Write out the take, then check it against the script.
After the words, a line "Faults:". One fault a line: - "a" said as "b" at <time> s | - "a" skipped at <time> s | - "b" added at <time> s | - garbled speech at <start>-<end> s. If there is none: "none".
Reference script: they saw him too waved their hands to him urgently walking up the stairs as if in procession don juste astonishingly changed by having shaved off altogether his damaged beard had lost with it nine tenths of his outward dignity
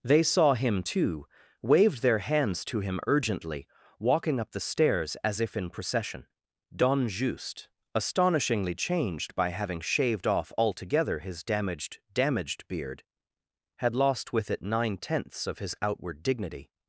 they saw him too waved their hands to him urgently walking up the stairs as if in procession don juste astonishingly changed by having shaved off altogether his damaged damaged beard had lost with it nine tenths of his outward dignity
Faults:
- "damaged" added at 12.1 s